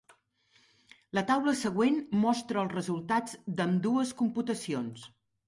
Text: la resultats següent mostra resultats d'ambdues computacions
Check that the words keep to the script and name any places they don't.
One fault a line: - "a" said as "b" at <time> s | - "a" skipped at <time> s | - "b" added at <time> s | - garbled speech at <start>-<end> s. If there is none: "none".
- "resultats" said as "taula" at 1.3 s
- "els" added at 2.6 s